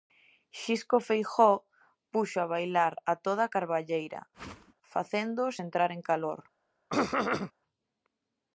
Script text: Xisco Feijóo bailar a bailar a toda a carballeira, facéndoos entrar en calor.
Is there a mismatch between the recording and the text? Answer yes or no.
yes